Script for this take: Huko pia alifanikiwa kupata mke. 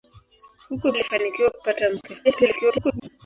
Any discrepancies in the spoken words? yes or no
yes